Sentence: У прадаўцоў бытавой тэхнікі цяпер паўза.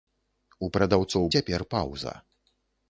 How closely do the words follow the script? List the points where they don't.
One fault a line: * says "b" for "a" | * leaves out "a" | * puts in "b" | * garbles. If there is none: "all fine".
* leaves out "бытавой тэхнікі"